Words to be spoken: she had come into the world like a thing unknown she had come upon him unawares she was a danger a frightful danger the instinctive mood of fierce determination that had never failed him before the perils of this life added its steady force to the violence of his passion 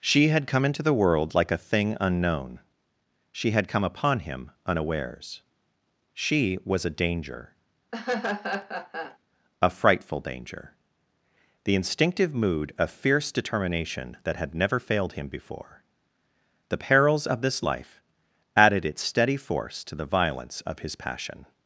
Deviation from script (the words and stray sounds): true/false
true